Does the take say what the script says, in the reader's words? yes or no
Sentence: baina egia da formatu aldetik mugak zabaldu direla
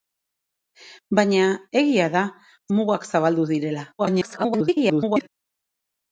no